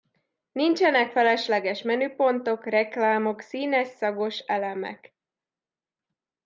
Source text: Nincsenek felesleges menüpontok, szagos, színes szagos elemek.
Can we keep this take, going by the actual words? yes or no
no